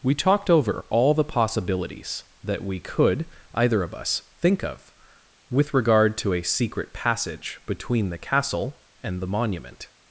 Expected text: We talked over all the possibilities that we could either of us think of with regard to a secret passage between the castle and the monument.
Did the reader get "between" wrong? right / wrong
right